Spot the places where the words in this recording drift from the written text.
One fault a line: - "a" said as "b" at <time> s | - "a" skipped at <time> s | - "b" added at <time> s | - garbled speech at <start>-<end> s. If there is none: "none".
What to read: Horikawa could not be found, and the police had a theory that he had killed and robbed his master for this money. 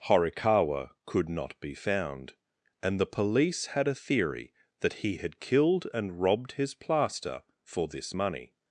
- "master" said as "plaster" at 6.7 s